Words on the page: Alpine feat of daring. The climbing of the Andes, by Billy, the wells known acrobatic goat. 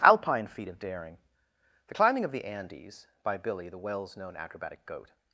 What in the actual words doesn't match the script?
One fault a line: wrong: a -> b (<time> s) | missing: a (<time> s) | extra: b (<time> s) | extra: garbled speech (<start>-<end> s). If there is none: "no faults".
no faults